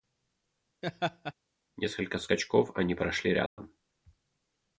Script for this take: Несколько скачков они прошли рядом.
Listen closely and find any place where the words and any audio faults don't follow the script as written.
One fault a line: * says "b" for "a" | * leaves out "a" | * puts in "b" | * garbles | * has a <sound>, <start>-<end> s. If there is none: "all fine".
* has a laugh, 0.8-1.3 s
* has a dropout, 3.5-3.6 s